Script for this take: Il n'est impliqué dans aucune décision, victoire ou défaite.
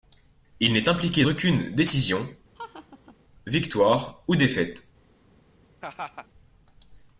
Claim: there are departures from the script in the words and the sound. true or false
true